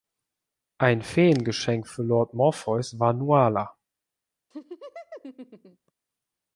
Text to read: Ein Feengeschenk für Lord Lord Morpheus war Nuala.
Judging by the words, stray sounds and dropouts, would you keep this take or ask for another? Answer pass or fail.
fail